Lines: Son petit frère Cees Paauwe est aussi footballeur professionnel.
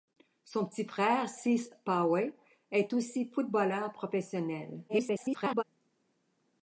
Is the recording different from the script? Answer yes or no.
yes